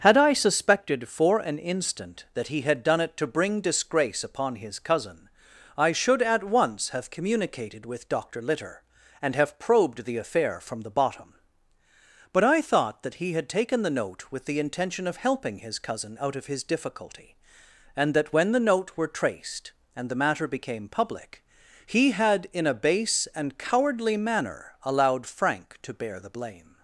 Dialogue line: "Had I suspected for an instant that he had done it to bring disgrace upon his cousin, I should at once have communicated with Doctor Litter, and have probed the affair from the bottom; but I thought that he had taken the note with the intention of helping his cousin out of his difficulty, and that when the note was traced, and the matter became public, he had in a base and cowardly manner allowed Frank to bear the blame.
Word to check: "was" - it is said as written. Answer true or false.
false